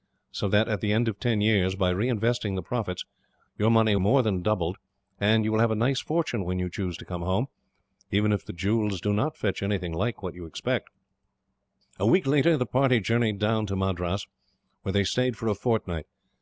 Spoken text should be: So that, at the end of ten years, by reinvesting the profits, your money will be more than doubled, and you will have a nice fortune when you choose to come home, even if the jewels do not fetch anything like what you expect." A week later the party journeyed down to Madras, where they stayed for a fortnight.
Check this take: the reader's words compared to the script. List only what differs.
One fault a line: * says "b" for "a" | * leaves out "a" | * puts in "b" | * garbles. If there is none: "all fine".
* leaves out "will be"